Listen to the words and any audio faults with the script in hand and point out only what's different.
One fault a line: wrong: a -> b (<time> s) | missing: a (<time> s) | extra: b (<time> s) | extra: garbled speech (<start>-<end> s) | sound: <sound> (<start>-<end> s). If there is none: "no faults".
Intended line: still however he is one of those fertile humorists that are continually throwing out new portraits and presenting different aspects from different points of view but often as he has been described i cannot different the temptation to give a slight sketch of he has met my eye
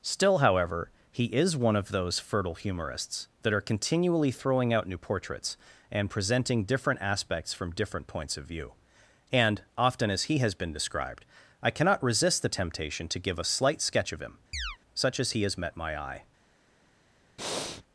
wrong: but -> and (9.3 s)
wrong: different -> resist (12.0 s)
extra: him such as (14.2 s)
sound: chirp (14.5-14.8 s)
sound: breath (17.4-17.8 s)